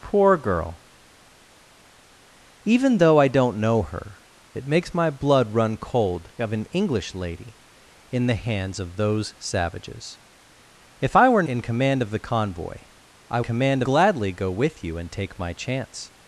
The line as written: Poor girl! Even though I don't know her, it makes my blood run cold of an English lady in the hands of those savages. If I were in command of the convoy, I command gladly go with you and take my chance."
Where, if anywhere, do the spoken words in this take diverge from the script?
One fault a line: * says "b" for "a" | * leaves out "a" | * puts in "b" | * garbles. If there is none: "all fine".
all fine